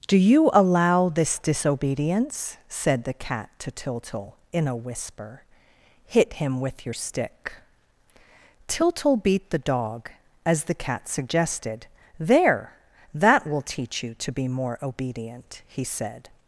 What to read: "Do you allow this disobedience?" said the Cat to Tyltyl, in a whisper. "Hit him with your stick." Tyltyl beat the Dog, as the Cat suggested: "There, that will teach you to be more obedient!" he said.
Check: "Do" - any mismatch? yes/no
no